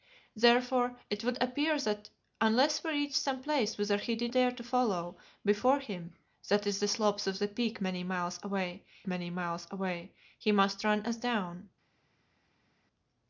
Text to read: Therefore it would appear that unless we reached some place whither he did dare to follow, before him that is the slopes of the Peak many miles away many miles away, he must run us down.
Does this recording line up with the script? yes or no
yes